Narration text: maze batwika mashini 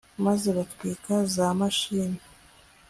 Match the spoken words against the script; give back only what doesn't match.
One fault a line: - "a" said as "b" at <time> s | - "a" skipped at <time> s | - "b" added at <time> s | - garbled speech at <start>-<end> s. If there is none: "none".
- "za" added at 1.3 s